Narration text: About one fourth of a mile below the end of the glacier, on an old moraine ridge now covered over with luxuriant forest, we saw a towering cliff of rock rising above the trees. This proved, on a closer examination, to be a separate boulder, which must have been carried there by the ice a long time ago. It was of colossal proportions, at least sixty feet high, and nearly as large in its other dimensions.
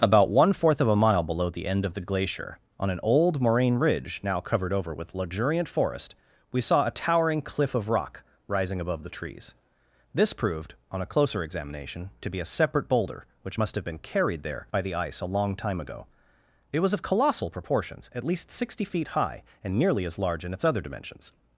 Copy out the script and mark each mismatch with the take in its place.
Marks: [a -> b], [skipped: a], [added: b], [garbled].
About one fourth of a mile below the end of the glacier, on an old moraine ridge now covered over with luxuriant forest, we saw a towering cliff of rock rising above the trees. This proved, on a closer examination, to be a separate boulder, which must have been carried there by the ice a long time ago. It was of colossal proportions, at least sixty feet high, and nearly as large in its other dimensions.